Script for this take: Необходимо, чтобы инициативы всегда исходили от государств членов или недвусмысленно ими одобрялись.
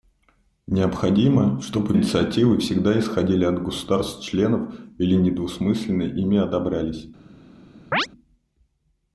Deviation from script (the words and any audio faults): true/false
true